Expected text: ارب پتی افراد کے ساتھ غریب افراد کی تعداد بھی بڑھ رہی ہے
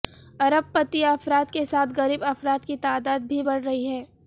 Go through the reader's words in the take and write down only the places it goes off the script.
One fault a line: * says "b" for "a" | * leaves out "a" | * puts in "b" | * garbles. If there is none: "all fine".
all fine